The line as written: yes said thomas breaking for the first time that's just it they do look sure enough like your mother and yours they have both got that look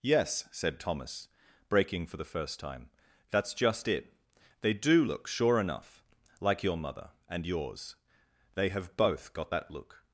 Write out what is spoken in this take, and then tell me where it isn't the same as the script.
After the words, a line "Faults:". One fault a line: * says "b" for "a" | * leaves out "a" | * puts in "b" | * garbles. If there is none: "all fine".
yes said thomas breaking for the first time that's just it they do look sure enough like your mother and yours they have both got that look
Faults:
all fine